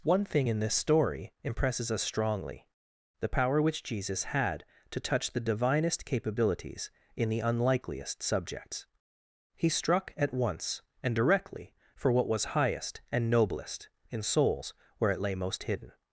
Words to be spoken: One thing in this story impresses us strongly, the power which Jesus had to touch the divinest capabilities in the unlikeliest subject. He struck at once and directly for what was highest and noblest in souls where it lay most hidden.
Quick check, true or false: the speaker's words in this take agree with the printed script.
false